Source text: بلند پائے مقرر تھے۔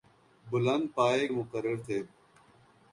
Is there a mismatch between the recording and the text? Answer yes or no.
no